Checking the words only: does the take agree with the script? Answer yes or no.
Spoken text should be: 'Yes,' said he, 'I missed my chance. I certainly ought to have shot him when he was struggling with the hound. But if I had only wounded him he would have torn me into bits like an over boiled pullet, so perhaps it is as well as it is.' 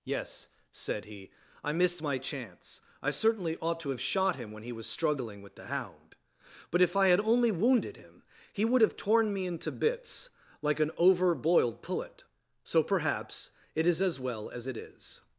yes